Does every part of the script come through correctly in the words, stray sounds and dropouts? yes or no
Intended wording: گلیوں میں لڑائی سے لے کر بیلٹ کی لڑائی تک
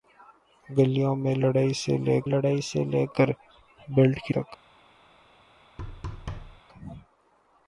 no